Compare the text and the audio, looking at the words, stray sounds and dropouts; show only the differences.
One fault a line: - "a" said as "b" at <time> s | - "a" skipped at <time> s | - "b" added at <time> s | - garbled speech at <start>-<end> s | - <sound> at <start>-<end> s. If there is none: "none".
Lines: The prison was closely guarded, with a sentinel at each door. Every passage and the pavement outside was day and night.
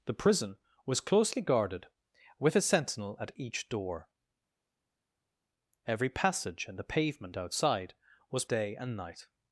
none